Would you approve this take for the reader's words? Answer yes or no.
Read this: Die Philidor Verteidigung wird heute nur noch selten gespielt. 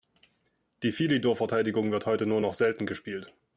yes